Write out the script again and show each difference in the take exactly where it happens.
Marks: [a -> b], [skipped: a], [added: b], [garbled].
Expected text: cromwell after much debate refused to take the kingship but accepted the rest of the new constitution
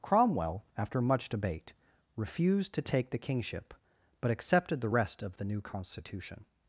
cromwell after much debate refused to take the kingship but accepted the rest of the new constitution